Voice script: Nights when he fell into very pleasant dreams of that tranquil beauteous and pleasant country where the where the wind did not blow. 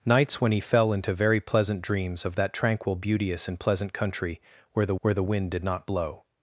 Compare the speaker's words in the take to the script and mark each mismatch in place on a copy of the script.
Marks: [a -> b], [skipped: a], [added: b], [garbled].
Nights when he fell into very pleasant dreams of that tranquil beauteous and pleasant country where the where the wind did not blow.